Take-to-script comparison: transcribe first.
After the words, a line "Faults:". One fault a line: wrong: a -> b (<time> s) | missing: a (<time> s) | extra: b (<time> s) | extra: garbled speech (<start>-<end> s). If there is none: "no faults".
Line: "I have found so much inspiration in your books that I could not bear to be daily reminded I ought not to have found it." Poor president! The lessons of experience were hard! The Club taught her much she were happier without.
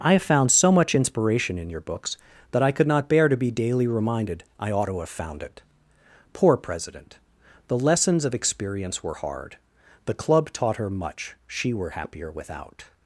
"I have found so much inspiration in your books that I could not bear to be daily reminded I ought to have found it." Poor president! The lessons of experience were hard! The Club taught her much she were happier without.
Faults:
missing: not (4.9 s)